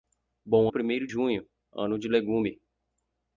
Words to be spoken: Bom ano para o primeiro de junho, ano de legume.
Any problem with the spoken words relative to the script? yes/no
yes